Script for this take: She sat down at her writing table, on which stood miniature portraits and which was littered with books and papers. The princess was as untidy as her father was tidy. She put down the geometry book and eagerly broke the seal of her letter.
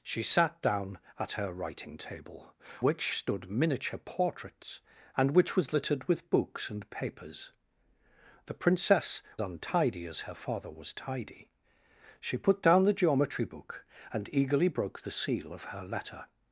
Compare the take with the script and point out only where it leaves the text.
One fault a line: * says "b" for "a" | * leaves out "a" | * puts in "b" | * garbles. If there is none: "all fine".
* leaves out "on"
* leaves out "was as"